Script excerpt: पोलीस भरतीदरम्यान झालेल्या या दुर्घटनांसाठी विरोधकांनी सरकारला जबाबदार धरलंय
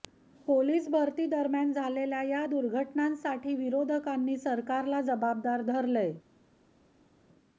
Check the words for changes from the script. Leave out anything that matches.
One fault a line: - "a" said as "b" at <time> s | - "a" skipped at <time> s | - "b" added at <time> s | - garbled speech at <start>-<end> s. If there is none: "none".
none